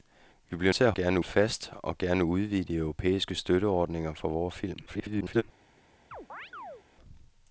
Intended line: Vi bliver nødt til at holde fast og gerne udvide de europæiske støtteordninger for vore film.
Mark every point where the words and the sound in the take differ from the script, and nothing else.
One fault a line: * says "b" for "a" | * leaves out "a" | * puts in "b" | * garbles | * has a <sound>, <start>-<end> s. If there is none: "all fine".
* leaves out "nødt"
* says "gerne" for "holde"
* garbles
* has a chirp, 6.1-6.8 s